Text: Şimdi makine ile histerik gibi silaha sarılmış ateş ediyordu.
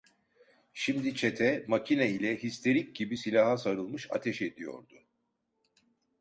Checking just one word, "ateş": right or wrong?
right